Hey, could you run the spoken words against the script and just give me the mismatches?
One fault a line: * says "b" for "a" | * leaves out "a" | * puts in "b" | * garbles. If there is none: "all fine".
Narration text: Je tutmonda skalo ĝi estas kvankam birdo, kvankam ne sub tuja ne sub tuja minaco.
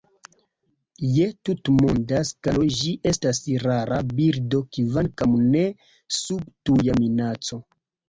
* says "rara" for "kvankam"
* leaves out "ne sub tuja"